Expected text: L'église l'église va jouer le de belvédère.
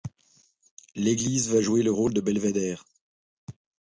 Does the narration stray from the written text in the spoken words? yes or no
yes